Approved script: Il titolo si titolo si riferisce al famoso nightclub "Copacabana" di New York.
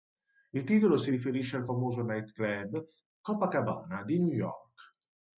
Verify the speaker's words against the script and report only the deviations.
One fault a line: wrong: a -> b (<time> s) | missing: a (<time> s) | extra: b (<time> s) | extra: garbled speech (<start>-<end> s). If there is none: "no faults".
missing: titolo si (1.1 s)